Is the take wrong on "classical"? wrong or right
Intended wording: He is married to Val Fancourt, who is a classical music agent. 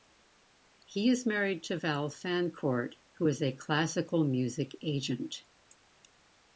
right